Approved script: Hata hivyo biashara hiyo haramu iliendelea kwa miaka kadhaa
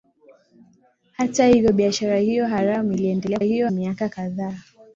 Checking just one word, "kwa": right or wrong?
wrong